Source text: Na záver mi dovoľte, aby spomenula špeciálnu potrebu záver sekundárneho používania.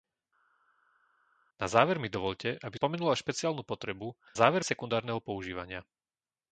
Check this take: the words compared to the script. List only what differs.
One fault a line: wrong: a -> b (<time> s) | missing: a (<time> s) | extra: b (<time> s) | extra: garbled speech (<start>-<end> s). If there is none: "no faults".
no faults